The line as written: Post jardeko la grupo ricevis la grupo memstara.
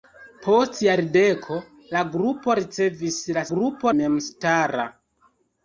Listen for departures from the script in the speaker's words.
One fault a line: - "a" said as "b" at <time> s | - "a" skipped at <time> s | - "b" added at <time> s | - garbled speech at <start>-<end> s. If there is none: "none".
none